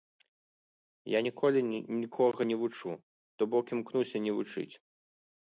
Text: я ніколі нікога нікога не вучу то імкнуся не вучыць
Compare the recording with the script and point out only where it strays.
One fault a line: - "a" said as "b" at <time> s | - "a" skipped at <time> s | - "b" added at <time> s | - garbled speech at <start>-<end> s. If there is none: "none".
- "нікога" skipped at 2.4 s
- "бок" added at 3.6 s